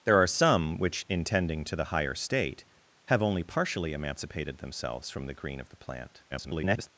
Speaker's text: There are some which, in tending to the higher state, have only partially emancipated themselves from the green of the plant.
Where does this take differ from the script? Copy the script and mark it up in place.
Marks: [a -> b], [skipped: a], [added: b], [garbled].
There are some which, in tending to the higher state, have only partially emancipated themselves from the green of the plant. [garbled]